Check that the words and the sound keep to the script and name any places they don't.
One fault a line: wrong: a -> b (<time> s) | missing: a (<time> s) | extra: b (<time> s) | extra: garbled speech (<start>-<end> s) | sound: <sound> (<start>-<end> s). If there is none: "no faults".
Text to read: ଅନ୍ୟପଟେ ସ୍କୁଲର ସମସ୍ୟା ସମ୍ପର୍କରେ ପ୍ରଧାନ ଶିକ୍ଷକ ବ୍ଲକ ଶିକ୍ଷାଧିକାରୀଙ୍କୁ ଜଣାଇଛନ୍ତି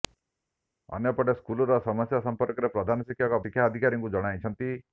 missing: ବ୍ଲକ (3.4 s)